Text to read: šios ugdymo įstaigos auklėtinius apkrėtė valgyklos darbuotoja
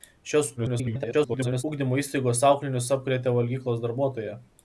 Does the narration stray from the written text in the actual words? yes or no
yes